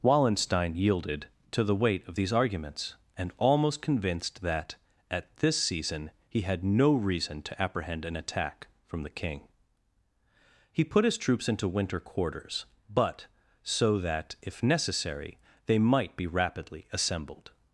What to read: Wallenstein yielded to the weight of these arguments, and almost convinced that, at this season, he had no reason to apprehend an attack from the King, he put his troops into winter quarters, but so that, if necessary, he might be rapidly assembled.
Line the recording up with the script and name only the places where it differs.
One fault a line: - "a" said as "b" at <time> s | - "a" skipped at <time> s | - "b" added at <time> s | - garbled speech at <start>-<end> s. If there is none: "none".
- "he" said as "they" at 15.7 s